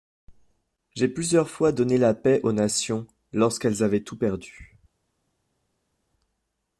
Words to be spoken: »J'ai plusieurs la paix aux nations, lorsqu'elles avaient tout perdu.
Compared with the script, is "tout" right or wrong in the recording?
right